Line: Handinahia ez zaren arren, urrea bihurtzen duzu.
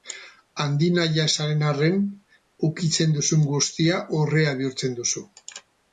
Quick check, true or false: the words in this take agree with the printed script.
false